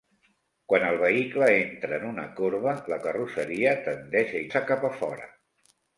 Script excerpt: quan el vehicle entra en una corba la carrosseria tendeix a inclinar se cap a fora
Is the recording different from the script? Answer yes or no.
yes